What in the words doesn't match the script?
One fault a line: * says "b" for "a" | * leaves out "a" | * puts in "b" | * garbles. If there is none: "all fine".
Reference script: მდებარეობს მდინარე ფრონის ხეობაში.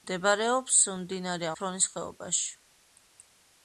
all fine